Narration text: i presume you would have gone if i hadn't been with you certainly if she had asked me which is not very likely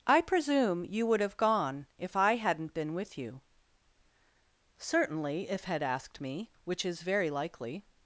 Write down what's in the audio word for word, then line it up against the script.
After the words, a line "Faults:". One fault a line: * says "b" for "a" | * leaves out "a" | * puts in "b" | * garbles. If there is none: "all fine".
i presume you would have gone if i hadn't been with you certainly if had asked me which is very likely
Faults:
* leaves out "she"
* leaves out "not"